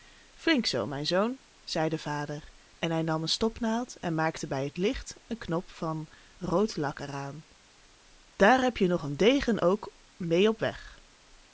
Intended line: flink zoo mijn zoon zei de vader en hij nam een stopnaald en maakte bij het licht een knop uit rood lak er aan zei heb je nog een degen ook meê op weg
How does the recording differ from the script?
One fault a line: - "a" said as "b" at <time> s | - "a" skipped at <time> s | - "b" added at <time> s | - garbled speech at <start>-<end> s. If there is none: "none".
- "uit" said as "van" at 5.7 s
- "zei" said as "daar" at 8.3 s